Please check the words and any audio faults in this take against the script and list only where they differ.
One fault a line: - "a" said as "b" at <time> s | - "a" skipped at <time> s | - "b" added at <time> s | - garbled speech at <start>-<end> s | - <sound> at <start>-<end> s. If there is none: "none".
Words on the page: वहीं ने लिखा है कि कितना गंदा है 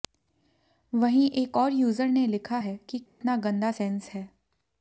- "एक और यूजर" added at 1.3 s
- dropout at 3.1-3.2 s
- "सेंस" added at 3.7 s